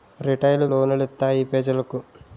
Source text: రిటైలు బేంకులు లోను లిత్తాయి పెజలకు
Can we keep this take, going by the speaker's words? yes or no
no